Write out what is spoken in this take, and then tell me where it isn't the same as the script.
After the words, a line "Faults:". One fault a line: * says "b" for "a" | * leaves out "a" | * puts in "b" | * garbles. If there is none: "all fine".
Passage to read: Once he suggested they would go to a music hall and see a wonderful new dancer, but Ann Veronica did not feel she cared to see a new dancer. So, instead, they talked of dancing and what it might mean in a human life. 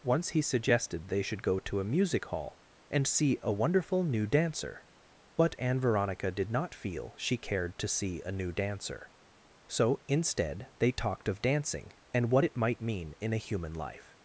Once he suggested they should go to a music hall and see a wonderful new dancer, but Ann Veronica did not feel she cared to see a new dancer. So, instead, they talked of dancing and what it might mean in a human life.
Faults:
* says "should" for "would"